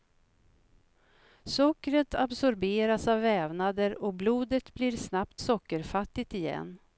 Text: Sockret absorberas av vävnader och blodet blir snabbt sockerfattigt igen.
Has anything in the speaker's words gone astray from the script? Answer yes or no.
no